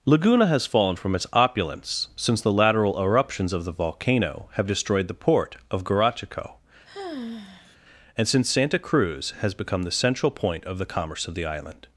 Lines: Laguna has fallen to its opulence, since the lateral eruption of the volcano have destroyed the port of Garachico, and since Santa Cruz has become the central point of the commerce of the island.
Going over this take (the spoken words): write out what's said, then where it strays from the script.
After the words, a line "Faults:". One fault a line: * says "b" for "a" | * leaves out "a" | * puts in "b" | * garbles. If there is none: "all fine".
Laguna has fallen from its opulence, since the lateral eruptions of the volcano have destroyed the port of Garachico, and since Santa Cruz has become the central point of the commerce of the island.
Faults:
* says "from" for "to"
* says "eruptions" for "eruption"